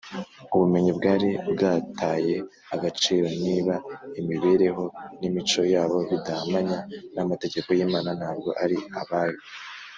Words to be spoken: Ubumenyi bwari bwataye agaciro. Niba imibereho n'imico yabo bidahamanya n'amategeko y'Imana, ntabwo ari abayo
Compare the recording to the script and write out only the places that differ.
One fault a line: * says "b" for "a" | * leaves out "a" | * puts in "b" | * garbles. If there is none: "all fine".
all fine